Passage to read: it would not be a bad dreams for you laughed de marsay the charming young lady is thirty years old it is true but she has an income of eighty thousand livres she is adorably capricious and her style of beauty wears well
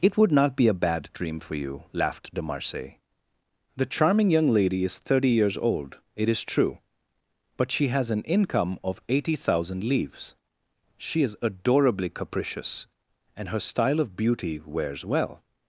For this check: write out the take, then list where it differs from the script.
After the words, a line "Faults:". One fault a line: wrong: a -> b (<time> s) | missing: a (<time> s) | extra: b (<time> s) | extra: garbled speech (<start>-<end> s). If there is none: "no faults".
it would not be a bad dream for you laughed de marsay the charming young lady is thirty years old it is true but she has an income of eighty thousand livres she is adorably capricious and her style of beauty wears well
Faults:
wrong: dreams -> dream (1.1 s)